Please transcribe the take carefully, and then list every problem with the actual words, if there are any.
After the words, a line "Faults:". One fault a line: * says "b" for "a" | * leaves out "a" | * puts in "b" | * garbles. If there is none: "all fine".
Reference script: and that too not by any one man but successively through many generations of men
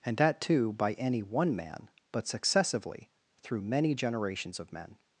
and that too by any one man but successively through many generations of men
Faults:
* leaves out "not"